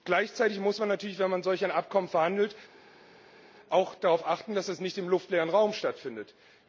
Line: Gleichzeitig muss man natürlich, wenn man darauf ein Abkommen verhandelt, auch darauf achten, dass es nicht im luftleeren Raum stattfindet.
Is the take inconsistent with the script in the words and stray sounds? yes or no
yes